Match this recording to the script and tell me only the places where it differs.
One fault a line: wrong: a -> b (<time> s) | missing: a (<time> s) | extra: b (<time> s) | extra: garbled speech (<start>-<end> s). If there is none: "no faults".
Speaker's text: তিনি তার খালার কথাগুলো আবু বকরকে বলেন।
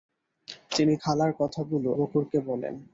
missing: তার (0.9 s)
missing: আবু (1.9 s)